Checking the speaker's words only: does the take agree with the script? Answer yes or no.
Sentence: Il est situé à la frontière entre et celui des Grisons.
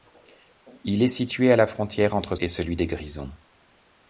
yes